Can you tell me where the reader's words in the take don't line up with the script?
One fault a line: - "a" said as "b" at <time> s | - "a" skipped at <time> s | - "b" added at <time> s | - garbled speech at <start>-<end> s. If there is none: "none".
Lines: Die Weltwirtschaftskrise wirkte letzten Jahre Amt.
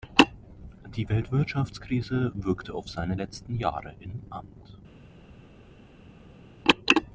- "auf seine" added at 2.7 s
- "im" added at 4.0 s